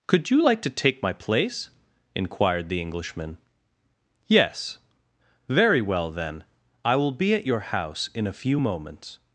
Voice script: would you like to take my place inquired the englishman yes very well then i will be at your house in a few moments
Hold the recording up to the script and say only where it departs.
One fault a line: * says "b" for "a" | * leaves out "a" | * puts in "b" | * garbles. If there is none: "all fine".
* says "could" for "would"